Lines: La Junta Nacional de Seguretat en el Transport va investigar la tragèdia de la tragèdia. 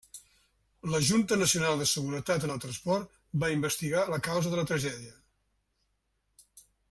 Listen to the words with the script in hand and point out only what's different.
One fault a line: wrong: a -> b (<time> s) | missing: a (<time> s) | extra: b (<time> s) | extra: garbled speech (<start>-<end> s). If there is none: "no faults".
wrong: tragèdia -> causa (4.3 s)